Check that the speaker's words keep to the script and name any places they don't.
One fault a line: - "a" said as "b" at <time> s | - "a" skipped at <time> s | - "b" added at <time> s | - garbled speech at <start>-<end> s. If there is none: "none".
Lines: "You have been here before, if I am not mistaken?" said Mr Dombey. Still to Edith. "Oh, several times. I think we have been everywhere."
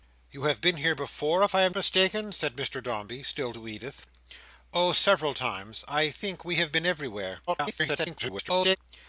- "not" skipped at 1.8 s
- garbled speech at 7.5-8.8 s